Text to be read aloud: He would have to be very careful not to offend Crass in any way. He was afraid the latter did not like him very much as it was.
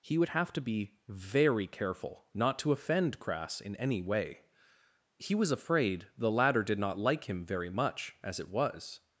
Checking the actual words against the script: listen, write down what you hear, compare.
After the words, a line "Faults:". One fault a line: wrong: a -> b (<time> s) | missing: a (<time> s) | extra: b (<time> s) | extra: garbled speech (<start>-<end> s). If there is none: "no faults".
He would have to be very careful not to offend Crass in any way. He was afraid the latter did not like him very much as it was.
Faults:
no faults